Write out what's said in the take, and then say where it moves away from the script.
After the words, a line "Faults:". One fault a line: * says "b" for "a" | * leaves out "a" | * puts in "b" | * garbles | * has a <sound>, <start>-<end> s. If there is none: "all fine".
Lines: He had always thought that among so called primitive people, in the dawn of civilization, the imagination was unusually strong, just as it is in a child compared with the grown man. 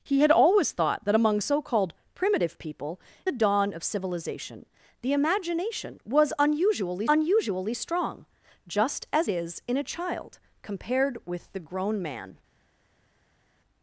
He had always thought that among so called primitive people, the dawn of civilization, the imagination was unusually unusually strong, just as is in a child compared with the grown man.
Faults:
* leaves out "in"
* puts in "unusually"
* leaves out "it"